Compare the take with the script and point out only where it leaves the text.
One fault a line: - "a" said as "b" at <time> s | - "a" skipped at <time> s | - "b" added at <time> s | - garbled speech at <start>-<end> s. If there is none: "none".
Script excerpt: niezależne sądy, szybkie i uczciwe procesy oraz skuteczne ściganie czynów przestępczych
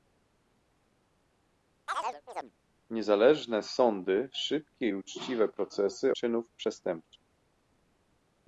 - "oraz skuteczne ściganie" skipped at 6.1 s